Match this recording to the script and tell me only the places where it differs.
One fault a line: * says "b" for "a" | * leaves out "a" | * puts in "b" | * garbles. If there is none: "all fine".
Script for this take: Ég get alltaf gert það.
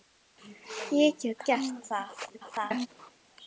* leaves out "alltaf"
* garbles